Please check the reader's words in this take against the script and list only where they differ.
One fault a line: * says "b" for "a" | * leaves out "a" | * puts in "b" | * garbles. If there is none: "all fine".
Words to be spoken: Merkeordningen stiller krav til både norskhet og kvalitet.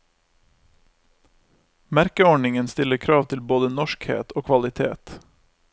all fine